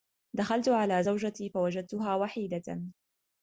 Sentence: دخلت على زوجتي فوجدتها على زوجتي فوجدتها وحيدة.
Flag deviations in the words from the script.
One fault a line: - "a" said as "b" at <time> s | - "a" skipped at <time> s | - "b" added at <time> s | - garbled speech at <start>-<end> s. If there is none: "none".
- "على زوجتي فوجدتها" skipped at 2.1 s